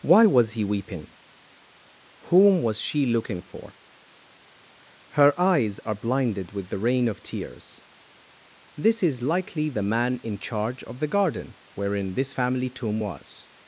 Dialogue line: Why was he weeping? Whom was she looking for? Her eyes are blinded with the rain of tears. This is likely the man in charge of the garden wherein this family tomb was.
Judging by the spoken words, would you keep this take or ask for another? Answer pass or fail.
pass